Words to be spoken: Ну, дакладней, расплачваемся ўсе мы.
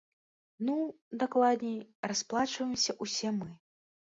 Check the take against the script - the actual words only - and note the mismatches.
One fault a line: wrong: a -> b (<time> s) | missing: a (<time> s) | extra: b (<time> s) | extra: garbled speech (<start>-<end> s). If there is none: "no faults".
no faults